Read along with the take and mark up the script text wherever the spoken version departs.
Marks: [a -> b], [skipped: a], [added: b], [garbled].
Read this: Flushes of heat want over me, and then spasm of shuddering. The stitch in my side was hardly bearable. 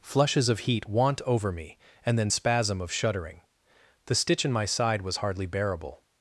Flushes of heat want over me, and then spasm of shuddering. The stitch in my side was hardly bearable.